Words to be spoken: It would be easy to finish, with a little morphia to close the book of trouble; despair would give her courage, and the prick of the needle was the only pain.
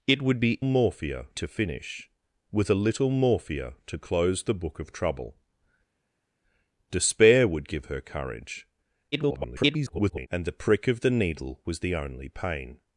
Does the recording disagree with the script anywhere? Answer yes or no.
yes